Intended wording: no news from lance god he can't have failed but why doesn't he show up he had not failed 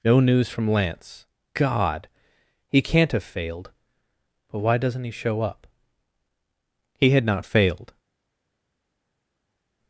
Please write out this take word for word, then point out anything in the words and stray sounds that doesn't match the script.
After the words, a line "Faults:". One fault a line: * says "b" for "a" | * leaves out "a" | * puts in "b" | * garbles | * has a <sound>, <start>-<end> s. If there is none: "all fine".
no news from lance god he can't have failed but why doesn't he show up he had not failed
Faults:
all fine